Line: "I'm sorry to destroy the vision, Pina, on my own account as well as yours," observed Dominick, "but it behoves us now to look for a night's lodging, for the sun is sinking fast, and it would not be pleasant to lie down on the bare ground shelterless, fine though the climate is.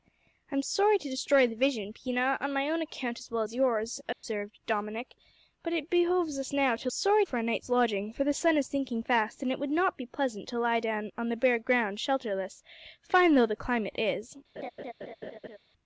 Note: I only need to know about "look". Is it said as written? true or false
false